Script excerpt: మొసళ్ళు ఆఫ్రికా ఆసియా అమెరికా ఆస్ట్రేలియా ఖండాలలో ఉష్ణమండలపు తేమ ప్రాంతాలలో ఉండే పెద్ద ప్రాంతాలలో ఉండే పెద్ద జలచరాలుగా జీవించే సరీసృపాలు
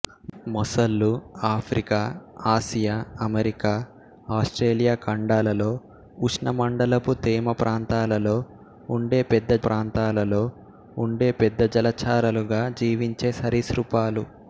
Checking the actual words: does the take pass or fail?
pass